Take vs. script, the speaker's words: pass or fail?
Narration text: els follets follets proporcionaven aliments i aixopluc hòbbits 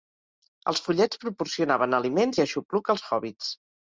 fail